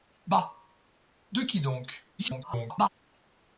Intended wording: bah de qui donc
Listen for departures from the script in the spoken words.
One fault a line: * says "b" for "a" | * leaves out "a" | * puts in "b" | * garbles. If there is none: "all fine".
* garbles